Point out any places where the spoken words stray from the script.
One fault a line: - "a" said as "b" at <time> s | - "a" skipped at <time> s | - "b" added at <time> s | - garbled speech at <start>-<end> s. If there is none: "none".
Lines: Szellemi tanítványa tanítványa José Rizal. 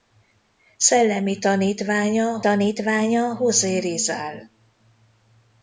none